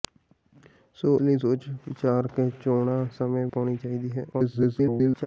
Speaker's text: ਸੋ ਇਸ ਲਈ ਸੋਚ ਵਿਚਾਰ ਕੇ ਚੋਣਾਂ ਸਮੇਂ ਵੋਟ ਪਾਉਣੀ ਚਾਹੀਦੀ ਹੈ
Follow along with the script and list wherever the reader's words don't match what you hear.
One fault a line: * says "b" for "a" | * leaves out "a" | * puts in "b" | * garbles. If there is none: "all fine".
* leaves out "ਇਸ"
* leaves out "ਵੋਟ"
* garbles